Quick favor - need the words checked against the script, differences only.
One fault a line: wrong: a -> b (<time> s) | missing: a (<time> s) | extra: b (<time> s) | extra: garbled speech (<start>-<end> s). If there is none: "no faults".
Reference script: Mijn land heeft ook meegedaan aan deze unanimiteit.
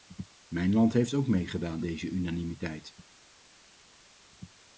missing: aan (1.9 s)